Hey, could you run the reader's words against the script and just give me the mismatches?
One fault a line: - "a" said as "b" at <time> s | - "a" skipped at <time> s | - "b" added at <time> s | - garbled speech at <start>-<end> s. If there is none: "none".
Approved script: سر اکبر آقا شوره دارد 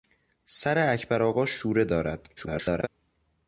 - garbled speech at 2.4-2.9 s